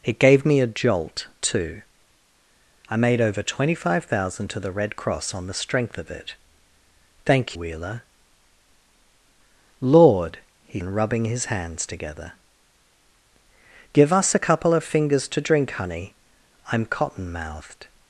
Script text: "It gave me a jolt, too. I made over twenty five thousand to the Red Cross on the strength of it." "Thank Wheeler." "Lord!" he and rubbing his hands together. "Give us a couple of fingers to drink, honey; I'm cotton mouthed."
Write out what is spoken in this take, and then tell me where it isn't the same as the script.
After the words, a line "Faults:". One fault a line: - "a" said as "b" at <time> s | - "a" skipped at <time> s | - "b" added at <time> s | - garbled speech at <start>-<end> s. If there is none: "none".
"It gave me a jolt, too. I made over twenty five thousand to the Red Cross on the strength of it." "Thank Wheeler." "Lord!" he and rubbing his hands together. "Give us a couple of fingers to drink, honey; I'm cotton mouthed."
Faults:
none